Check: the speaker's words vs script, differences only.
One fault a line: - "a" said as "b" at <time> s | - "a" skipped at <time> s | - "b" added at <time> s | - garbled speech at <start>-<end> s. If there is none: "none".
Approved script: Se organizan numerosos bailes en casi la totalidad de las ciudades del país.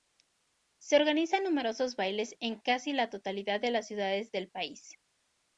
none